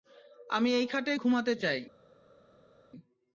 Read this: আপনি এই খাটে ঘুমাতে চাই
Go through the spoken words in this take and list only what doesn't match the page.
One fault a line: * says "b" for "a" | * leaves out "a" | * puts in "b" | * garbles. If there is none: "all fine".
* says "আমি" for "আপনি"